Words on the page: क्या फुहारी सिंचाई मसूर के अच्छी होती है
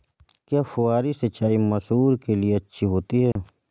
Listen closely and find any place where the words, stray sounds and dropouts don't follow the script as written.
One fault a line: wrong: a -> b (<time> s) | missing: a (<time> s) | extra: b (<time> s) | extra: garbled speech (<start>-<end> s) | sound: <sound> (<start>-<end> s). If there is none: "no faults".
extra: लिए (2.4 s)
sound: dropout (3.3-3.4 s)